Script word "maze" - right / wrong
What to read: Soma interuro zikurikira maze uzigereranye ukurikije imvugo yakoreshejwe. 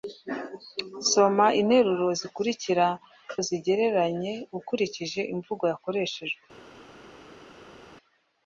wrong